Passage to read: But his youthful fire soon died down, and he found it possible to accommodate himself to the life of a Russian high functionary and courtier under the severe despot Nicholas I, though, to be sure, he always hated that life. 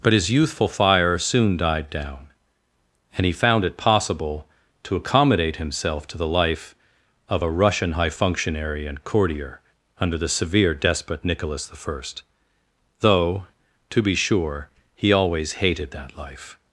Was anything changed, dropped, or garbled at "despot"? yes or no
no